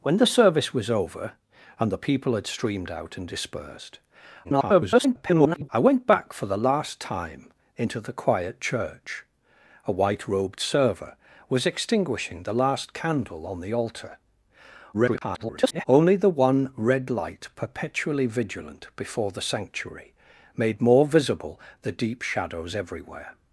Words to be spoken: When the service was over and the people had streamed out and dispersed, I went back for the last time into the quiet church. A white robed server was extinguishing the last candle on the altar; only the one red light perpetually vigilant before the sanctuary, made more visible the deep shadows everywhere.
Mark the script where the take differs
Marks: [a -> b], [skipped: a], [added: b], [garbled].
When the service was over and the people had streamed out and dispersed, [garbled] I went back for the last time into the quiet church. A white robed server was extinguishing the last candle on the altar; [garbled] only the one red light perpetually vigilant before the sanctuary, made more visible the deep shadows everywhere.